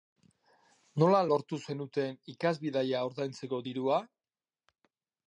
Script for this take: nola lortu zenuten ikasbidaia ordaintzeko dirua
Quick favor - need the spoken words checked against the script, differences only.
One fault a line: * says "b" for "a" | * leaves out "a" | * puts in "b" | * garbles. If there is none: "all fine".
all fine